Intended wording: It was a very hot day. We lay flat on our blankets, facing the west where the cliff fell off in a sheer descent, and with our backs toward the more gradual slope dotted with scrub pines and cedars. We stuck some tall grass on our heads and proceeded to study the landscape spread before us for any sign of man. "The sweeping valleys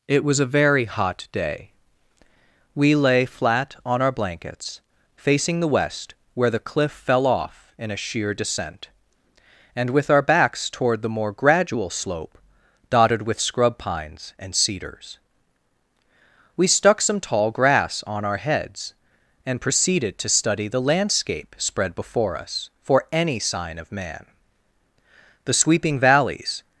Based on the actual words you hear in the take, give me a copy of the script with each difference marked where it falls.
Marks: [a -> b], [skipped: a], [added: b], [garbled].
It was a very hot day. We lay flat on our blankets, facing the west where the cliff fell off in a sheer descent, and with our backs toward the more gradual slope dotted with scrub pines and cedars. We stuck some tall grass on our heads and proceeded to study the landscape spread before us for any sign of man. "The sweeping valleys